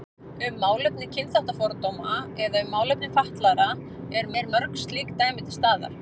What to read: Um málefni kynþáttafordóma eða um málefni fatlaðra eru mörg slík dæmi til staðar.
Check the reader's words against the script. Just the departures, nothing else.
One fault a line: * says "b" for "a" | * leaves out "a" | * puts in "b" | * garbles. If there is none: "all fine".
* puts in "eru"